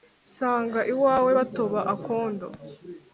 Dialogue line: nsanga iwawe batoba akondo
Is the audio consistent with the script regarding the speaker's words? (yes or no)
yes